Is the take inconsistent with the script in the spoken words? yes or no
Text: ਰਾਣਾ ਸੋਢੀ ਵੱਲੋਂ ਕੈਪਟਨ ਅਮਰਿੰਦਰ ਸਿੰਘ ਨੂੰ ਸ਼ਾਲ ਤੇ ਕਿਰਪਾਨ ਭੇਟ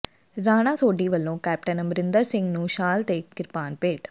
no